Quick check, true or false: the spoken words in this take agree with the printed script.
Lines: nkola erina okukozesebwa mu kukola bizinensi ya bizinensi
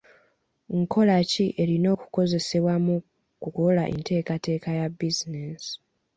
false